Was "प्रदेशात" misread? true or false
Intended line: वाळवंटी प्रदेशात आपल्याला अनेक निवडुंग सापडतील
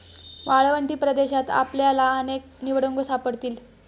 false